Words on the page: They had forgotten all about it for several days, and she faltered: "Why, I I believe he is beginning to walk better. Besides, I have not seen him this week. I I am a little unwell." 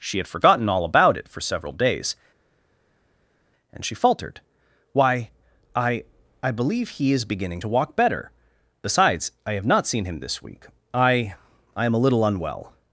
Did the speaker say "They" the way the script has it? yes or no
no